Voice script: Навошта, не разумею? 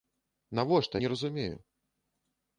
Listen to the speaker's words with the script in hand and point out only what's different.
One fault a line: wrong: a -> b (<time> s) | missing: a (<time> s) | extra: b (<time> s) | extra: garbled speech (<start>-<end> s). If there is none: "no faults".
no faults